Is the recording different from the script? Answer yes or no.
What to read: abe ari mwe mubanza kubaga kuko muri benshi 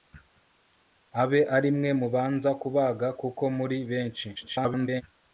yes